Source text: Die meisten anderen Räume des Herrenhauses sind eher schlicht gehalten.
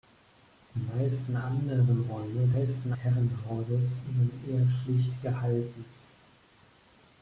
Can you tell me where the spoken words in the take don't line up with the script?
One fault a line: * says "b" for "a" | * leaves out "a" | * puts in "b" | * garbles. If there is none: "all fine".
* says "meisten" for "des"